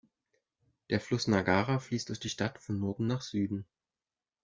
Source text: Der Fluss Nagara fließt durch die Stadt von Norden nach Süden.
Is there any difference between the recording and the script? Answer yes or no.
no